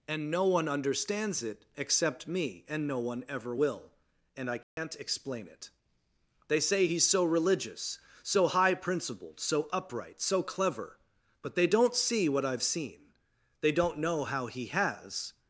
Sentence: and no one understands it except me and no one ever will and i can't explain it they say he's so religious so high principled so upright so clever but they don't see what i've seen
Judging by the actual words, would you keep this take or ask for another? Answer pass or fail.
fail